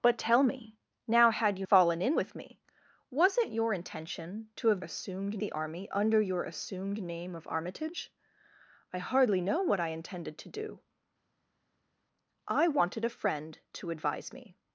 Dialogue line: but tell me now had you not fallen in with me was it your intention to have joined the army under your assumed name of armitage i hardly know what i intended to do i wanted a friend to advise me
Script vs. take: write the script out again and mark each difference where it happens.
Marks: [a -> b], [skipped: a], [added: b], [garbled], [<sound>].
but tell me now had you [skipped: not] fallen in with me was it your intention to have [joined -> assumed] the army under your assumed name of armitage i hardly know what i intended to do i wanted a friend to advise me